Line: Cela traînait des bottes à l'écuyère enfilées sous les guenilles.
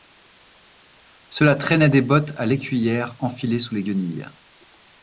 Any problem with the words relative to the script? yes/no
no